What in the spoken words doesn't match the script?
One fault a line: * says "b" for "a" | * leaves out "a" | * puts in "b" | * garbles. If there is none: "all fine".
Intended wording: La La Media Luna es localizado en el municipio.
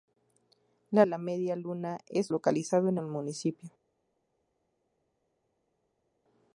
all fine